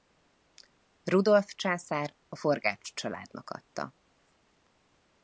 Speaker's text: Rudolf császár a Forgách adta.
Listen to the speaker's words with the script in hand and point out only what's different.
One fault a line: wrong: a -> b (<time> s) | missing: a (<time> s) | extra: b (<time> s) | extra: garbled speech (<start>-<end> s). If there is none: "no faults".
extra: családnak (2.9 s)